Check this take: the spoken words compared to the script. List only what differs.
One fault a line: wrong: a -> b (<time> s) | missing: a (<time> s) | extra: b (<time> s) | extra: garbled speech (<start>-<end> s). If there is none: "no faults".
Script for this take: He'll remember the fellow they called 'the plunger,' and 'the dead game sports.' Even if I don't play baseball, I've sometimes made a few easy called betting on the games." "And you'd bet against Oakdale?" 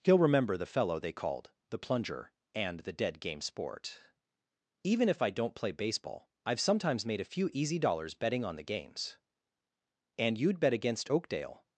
wrong: sports -> sport (3.4 s)
wrong: called -> dollars (7.8 s)